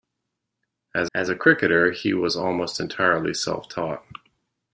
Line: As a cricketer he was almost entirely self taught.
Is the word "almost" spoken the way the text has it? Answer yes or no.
yes